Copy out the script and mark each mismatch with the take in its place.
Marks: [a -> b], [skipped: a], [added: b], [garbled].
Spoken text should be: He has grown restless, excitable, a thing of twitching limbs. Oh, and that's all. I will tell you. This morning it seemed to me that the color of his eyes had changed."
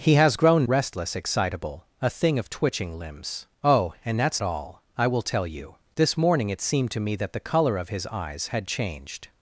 He has grown restless, excitable, a thing of twitching limbs. Oh, and that's all. I will tell you. This morning it seemed to me that the color of his eyes had changed."